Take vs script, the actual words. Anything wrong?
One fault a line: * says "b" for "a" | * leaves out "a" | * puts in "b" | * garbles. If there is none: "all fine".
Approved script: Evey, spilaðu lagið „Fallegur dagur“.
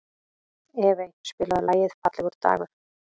all fine